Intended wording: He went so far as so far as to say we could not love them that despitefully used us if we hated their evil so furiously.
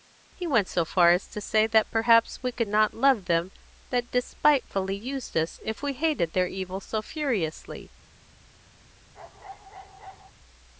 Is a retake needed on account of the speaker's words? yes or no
yes